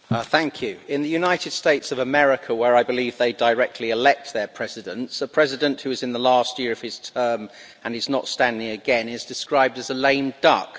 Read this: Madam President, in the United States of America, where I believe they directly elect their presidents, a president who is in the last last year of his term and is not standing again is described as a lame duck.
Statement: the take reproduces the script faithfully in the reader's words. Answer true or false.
false